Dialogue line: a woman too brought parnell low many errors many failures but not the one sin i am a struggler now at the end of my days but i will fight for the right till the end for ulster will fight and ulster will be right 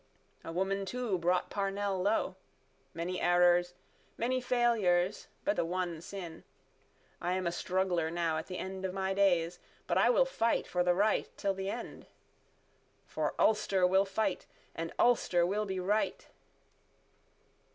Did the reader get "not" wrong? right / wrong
wrong